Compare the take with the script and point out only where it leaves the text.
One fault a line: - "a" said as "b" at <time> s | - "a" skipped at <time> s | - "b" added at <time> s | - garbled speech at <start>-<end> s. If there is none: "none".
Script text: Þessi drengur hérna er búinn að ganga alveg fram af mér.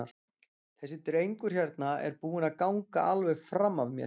none